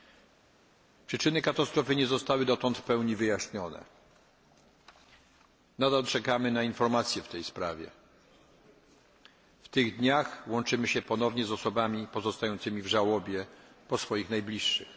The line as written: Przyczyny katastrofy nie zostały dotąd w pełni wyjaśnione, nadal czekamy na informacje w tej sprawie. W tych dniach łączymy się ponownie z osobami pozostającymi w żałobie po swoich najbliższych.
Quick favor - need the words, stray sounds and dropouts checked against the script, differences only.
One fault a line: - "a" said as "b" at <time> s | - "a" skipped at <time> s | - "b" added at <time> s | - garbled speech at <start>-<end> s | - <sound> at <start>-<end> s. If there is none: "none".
none